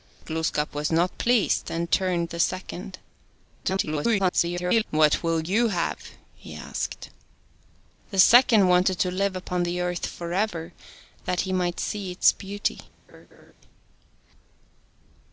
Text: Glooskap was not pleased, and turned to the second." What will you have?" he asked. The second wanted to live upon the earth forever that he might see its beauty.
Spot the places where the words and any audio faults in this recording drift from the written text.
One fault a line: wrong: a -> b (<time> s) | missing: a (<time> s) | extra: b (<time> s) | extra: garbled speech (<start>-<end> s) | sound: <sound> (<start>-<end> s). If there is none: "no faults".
missing: to (2.3 s)
extra: garbled speech (3.6-4.8 s)
sound: laugh (13.1-13.5 s)